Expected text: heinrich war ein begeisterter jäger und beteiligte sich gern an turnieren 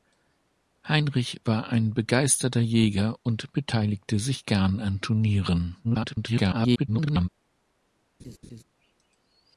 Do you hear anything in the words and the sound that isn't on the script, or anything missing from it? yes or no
yes